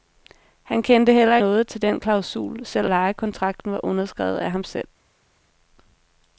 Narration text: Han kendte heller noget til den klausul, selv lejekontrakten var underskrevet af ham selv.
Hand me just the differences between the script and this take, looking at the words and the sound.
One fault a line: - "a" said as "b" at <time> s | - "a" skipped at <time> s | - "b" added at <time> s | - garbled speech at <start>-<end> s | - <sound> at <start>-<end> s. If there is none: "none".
none